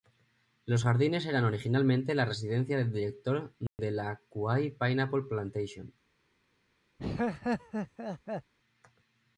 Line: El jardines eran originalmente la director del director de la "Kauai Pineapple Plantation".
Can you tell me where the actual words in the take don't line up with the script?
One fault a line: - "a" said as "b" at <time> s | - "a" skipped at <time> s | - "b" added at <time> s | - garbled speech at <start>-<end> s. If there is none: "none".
- "El" said as "Los" at 0.7 s
- "director" said as "residencia" at 2.2 s